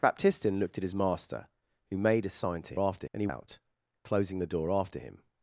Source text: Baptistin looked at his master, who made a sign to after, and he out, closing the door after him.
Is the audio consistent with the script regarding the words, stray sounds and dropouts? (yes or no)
yes